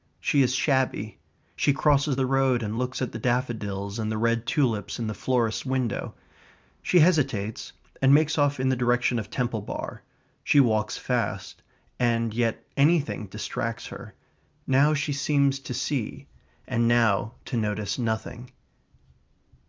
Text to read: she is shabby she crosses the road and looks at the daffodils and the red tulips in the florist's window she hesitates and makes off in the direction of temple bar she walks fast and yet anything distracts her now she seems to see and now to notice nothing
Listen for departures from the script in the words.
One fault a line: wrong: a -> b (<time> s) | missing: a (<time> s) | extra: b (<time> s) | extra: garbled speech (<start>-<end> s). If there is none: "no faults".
no faults